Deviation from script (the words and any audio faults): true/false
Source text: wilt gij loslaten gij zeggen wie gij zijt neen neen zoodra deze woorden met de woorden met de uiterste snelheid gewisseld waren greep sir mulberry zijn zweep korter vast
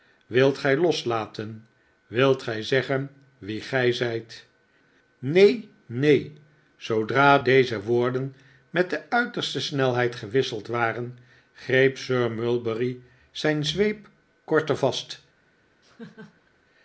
true